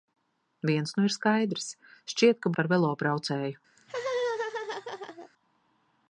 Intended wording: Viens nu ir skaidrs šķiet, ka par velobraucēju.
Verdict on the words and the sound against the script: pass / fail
fail